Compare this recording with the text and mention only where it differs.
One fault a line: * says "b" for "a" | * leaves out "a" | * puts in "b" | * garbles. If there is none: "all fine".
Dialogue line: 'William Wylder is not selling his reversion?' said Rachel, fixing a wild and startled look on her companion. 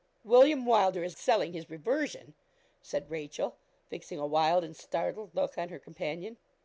* leaves out "not"